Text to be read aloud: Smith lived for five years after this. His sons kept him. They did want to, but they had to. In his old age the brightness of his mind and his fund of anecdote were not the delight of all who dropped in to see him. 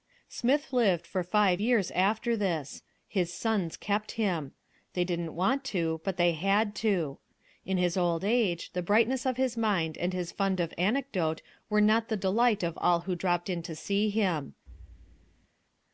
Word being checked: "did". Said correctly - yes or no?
no